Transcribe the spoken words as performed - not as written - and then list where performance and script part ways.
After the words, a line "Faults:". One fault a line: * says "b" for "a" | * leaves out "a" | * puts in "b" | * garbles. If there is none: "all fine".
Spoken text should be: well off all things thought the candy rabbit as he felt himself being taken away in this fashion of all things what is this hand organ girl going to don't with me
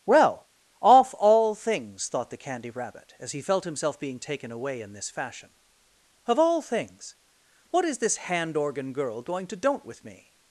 well off all things thought the candy rabbit as he felt himself being taken away in this fashion of all things what is this hand organ girl going to don't with me
Faults:
all fine